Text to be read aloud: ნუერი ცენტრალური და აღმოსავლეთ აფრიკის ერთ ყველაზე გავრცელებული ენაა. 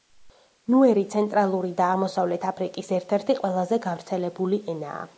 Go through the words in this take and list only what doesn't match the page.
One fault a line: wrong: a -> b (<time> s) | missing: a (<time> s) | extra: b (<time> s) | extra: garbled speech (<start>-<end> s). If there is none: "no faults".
extra: ერთი (3.2 s)